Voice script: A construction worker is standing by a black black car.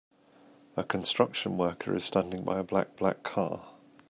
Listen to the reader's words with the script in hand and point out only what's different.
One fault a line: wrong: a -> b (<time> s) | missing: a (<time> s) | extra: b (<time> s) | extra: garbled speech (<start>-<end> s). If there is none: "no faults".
no faults